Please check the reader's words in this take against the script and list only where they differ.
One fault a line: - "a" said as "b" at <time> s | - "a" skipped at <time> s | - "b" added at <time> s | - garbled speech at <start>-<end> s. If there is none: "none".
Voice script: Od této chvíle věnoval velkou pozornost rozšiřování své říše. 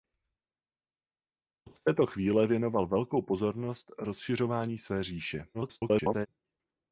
- garbled speech at 5.5-6.3 s